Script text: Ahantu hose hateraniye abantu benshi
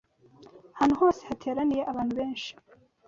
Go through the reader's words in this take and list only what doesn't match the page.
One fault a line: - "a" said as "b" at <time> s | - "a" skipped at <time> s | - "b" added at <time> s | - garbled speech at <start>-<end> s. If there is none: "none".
none